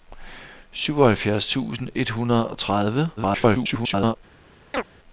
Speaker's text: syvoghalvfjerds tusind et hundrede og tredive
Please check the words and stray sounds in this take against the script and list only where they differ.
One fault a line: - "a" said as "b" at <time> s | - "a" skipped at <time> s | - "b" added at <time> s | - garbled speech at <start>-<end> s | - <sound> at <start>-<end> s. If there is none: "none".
- garbled speech at 3.2-4.2 s
- chirp at 4.7-4.9 s